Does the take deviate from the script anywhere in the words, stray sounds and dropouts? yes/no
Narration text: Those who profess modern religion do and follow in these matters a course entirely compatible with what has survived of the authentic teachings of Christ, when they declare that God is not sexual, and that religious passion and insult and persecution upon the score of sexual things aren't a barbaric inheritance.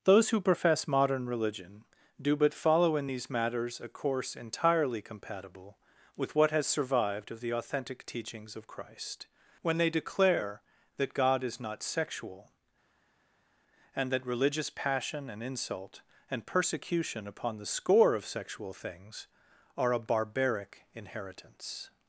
yes